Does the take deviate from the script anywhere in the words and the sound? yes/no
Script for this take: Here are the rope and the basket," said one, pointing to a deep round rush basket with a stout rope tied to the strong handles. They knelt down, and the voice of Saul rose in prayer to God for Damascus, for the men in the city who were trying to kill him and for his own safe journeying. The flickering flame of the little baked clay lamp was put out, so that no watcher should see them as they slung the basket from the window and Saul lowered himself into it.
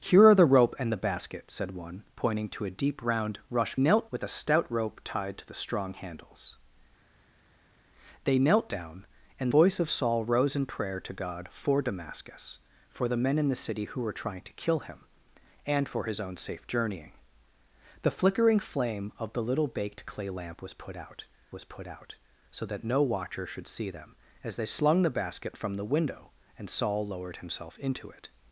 yes